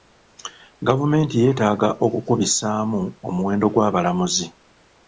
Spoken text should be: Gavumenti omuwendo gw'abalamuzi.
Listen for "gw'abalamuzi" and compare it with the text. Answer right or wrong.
right